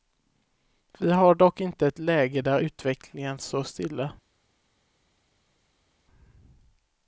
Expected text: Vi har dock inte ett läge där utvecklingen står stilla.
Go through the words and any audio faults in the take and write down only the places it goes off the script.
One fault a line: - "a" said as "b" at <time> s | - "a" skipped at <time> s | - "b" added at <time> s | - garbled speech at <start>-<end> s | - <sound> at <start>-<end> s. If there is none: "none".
none